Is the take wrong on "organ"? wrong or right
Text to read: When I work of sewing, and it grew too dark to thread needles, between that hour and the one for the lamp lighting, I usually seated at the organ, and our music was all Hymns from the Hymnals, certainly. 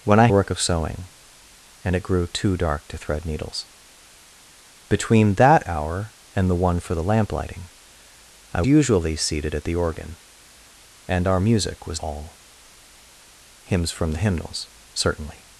right